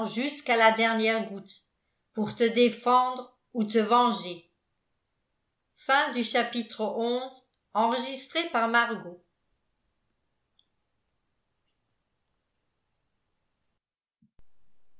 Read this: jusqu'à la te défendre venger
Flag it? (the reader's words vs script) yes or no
yes